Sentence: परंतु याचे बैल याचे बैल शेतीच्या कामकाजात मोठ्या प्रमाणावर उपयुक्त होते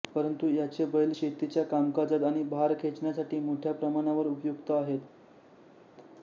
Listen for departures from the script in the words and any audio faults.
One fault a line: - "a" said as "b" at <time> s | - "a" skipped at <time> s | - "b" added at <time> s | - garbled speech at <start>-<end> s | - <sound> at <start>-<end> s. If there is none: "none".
- "याचे बैल शेतीच्या कामकाजात" said as "शेतीच्या कामकाजात आणि भार खेचण्यासाठी" at 1.1 s
- "होते" said as "आहेत" at 4.7 s